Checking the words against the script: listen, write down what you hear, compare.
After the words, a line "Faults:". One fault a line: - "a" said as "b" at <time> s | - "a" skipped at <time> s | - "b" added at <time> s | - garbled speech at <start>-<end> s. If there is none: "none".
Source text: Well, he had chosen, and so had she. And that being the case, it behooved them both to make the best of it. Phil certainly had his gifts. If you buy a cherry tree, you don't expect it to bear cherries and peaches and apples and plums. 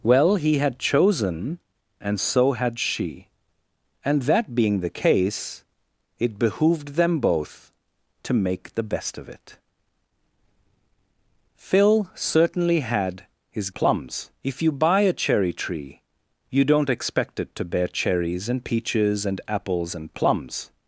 Well, he had chosen, and so had she. And that being the case, it behooved them both to make the best of it. Phil certainly had his plums. If you buy a cherry tree, you don't expect it to bear cherries and peaches and apples and plums.
Faults:
- "gifts" said as "plums" at 13.7 s